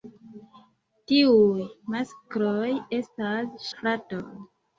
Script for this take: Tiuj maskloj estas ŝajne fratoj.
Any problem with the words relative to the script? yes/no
yes